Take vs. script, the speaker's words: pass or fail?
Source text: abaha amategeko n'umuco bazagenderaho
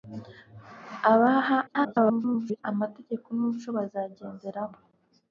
fail